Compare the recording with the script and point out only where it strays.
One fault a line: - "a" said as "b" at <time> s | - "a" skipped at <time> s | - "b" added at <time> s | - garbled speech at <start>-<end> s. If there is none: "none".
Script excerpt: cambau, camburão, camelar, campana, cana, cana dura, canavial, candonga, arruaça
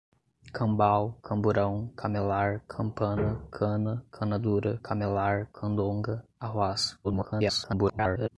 - "canavial" said as "camelar" at 4.8 s
- garbled speech at 7.0-8.3 s